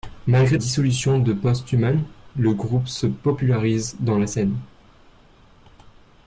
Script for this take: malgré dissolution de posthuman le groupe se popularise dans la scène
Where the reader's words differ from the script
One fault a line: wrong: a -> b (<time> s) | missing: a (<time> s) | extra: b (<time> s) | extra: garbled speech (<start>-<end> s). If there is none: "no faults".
no faults